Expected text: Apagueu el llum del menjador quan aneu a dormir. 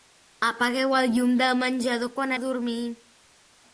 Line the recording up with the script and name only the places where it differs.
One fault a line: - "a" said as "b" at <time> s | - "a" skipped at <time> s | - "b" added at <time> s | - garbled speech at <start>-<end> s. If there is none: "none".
- "aneu" skipped at 2.3 s